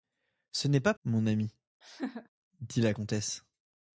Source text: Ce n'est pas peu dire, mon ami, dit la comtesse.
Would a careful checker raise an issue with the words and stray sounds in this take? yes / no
yes